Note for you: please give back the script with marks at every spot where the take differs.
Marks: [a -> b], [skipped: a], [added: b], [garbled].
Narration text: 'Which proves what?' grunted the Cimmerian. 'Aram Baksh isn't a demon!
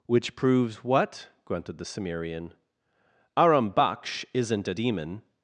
'Which proves what?' grunted the Cimmerian. 'Aram Baksh isn't a demon!